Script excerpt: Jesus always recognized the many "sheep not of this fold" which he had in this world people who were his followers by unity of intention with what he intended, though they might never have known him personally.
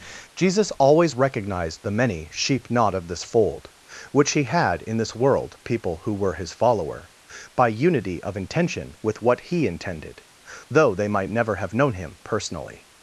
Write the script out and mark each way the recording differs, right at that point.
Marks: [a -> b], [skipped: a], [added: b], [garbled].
Jesus always recognized the many "sheep not of this fold" which he had in this world people who were his [followers -> follower] by unity of intention with what he intended, though they might never have known him personally.